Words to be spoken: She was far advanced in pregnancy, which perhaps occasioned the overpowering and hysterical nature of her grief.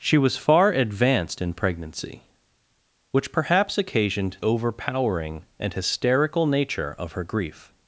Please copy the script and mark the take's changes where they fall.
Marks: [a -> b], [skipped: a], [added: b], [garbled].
She was far advanced in pregnancy, which perhaps occasioned [skipped: the] overpowering and hysterical nature of her grief.